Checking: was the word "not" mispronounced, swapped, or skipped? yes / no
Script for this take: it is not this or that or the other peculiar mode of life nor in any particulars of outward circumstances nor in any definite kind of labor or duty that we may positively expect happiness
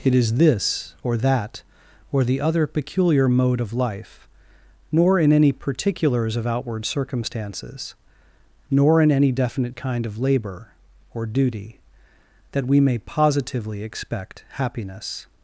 yes